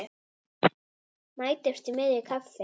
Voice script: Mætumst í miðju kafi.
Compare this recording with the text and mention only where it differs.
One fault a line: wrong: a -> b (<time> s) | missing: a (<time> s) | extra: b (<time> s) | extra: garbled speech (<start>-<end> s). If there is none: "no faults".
no faults